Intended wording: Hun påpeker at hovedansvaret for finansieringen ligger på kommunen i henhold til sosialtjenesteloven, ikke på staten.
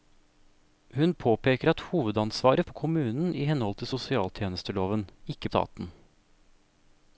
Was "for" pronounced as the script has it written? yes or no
no